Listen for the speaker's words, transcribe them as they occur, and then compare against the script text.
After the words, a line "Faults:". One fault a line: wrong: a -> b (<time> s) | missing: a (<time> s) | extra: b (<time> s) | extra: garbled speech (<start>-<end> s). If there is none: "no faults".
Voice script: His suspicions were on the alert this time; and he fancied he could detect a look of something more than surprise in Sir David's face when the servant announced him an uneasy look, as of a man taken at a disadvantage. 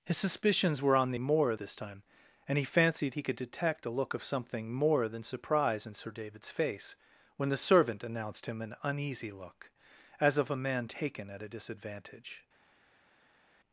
His suspicions were on the more this time; and he fancied he could detect a look of something more than surprise in Sir David's face when the servant announced him an uneasy look, as of a man taken at a disadvantage.
Faults:
wrong: alert -> more (1.2 s)